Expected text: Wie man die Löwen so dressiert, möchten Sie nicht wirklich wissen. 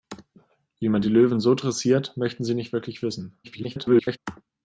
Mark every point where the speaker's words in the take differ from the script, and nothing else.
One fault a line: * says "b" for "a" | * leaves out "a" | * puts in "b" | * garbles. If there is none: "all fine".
* garbles